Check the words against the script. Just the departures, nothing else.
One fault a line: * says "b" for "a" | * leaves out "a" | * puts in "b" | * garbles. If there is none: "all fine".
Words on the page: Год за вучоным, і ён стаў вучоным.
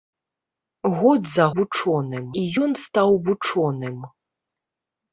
all fine